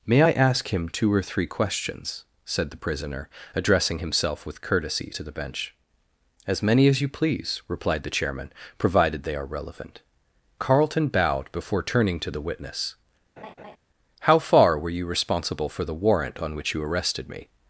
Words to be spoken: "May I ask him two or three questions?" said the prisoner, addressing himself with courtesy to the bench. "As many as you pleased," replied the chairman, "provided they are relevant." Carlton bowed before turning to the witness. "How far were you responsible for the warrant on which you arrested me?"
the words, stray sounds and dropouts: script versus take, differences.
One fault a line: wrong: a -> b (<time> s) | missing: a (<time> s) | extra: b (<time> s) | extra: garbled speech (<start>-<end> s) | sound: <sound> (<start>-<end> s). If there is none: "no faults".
wrong: pleased -> please (7.1 s)
sound: laugh (13.4-13.8 s)